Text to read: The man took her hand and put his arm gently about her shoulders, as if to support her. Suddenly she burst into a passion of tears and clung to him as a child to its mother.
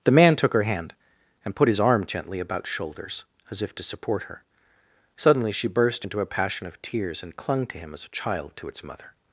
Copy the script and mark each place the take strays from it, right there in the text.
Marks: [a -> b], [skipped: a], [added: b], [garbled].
The man took her hand and put his arm gently about [skipped: her] shoulders, as if to support her. Suddenly she burst into a passion of tears and clung to him as a child to its mother.